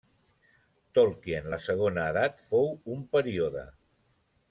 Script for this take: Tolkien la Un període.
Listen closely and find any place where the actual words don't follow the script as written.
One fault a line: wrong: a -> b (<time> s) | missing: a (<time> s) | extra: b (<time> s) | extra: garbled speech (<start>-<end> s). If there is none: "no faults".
extra: Segona Edat fou (1.6 s)